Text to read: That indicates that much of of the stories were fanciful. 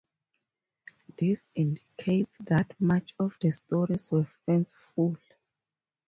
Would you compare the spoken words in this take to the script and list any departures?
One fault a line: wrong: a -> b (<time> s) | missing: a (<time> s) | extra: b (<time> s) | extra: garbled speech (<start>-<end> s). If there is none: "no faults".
wrong: That -> This (1.1 s)
missing: of (3.4 s)